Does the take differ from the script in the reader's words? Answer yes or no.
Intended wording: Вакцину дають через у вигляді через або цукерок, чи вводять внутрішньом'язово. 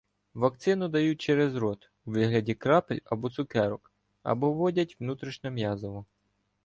yes